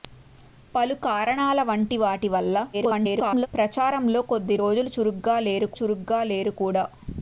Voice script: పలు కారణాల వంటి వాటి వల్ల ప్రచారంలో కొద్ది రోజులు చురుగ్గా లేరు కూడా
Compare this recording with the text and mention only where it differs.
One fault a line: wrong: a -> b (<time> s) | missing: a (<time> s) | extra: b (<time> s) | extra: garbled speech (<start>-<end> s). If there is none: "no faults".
extra: garbled speech (2.7-3.5 s)
extra: చురుగ్గా లేరు (5.8 s)